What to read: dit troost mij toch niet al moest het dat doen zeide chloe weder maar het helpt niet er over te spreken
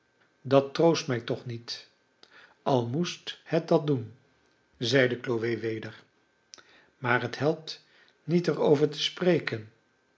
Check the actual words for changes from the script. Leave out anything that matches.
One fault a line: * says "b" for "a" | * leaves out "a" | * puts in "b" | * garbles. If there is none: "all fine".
* says "dat" for "dit"